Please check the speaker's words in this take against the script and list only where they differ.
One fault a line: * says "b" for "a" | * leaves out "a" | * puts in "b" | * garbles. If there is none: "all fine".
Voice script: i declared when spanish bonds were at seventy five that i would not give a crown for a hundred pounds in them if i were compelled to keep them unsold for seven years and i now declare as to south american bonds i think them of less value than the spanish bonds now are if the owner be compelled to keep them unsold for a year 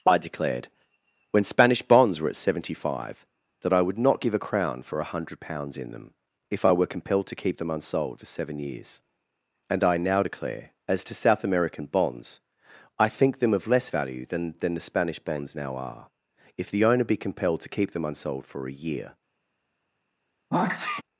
* puts in "than"